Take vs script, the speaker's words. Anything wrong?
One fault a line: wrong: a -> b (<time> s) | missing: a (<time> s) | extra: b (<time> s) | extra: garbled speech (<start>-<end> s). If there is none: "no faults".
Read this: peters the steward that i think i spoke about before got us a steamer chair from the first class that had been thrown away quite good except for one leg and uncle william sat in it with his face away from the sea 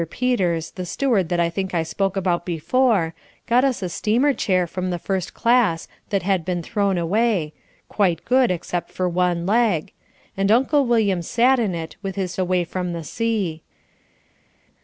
missing: face (12.3 s)